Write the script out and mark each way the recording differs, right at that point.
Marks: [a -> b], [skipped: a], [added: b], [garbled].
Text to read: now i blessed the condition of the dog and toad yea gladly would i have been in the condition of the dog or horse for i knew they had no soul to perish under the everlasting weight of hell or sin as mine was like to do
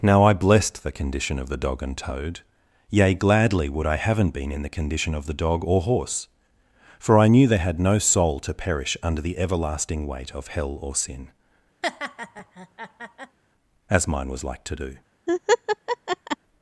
now i blessed the condition of the dog and toad yea gladly would i [have -> haven't] been in the condition of the dog or horse for i knew they had no soul to perish under the everlasting weight of hell or sin as mine was like to do